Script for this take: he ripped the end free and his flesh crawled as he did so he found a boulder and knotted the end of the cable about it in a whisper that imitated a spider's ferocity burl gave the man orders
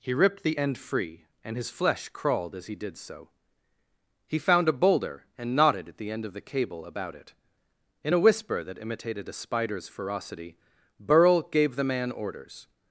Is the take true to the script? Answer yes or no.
no